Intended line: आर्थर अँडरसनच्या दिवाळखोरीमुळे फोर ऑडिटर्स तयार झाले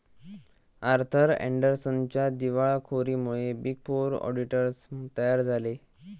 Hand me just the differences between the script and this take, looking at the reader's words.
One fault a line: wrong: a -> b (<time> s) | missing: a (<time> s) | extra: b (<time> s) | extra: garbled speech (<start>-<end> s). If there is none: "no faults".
extra: बिग (3.5 s)